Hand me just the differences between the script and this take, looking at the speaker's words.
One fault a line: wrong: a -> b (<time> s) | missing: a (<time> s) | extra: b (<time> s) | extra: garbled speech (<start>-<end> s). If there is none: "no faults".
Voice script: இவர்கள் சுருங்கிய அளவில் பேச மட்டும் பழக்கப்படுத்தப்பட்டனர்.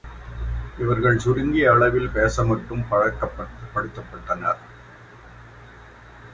no faults